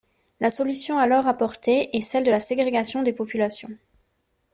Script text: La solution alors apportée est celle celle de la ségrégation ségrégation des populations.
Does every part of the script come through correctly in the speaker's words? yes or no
no